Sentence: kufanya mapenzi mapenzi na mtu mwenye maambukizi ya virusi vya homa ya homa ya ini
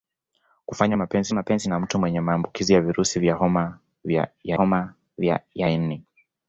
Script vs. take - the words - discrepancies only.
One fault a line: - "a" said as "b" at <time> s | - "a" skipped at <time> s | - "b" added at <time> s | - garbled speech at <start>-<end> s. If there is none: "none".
none